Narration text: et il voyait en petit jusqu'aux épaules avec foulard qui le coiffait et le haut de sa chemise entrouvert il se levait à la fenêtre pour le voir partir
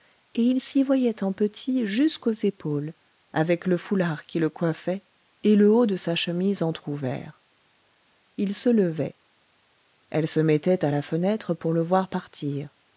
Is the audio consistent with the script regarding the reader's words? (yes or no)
no